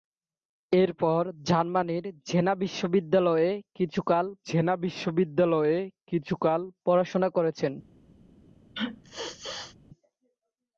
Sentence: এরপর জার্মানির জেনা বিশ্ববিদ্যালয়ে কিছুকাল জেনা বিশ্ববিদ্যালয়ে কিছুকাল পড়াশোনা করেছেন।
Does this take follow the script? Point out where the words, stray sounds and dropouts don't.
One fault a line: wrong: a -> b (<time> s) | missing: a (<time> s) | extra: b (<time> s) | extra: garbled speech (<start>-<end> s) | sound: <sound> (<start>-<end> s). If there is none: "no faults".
sound: sneeze (8.7-9.8 s)